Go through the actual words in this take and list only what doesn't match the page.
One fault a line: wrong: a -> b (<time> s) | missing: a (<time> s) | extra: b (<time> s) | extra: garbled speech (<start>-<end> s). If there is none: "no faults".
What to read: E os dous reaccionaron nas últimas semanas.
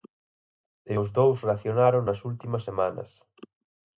no faults